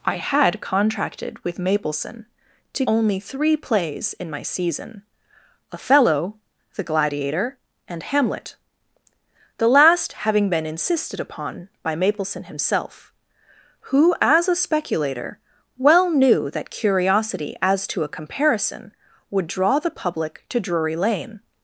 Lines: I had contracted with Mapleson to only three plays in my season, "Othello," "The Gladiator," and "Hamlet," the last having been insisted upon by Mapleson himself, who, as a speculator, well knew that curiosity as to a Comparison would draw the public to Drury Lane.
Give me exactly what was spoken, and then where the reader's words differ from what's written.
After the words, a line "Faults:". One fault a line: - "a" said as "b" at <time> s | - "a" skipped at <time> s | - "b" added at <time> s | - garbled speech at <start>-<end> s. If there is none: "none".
I had contracted with Mapleson to only three plays in my season, "Othello," "The Gladiator," and "Hamlet," the last having been insisted upon by Mapleson himself, who, as a speculator, well knew that curiosity as to a Comparison would draw the public to Drury Lane.
Faults:
none